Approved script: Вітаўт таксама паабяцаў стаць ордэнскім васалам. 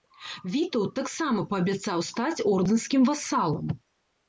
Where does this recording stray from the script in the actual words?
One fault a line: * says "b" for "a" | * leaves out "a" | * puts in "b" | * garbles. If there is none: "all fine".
all fine